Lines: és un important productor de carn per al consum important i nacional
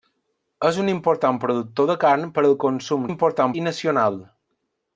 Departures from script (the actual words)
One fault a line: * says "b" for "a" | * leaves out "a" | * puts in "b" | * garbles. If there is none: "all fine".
all fine